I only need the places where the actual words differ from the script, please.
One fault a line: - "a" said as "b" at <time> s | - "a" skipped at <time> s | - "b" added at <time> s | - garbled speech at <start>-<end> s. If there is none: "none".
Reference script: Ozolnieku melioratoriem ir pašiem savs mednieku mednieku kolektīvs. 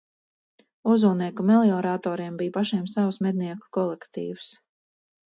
- "ir" said as "bija" at 2.4 s
- "mednieku" skipped at 3.7 s